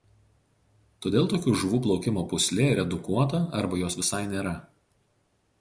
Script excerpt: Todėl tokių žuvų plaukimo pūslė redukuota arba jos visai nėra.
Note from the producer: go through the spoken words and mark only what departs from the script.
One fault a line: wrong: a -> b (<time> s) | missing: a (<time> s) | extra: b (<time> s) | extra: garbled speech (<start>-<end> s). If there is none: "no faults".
no faults